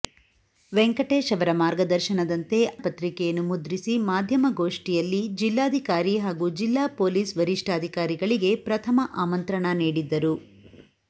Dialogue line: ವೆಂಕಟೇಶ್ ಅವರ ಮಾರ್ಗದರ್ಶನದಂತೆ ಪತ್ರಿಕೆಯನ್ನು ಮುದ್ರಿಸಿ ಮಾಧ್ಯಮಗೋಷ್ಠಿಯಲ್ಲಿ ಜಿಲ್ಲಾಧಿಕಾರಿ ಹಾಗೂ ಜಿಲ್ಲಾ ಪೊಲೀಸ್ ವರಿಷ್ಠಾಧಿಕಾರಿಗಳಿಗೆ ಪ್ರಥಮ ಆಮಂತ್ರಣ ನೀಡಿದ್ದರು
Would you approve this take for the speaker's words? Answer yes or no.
yes